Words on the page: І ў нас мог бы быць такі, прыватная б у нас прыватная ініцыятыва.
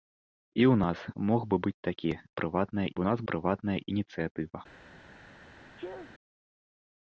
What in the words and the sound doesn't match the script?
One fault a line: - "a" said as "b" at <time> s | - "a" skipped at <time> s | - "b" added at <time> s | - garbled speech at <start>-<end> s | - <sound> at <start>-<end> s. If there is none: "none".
- sneeze at 5.8-6.1 s